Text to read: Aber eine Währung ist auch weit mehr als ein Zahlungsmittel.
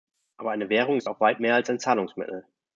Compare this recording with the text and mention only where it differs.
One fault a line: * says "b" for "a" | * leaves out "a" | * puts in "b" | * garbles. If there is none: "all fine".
all fine